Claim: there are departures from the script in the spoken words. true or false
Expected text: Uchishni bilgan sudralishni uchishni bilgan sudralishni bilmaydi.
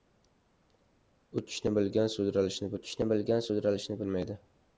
false